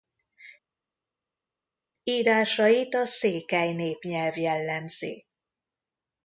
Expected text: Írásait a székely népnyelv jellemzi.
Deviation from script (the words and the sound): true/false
false